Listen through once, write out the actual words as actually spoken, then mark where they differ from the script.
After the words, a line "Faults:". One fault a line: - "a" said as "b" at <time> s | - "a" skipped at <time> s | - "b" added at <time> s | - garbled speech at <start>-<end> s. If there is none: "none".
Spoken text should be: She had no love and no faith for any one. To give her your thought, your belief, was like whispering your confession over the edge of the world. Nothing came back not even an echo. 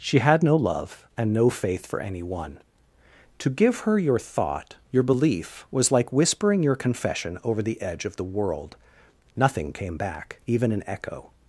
She had no love and no faith for any one. To give her your thought, your belief, was like whispering your confession over the edge of the world. Nothing came back even an echo.
Faults:
- "not" skipped at 10.4 s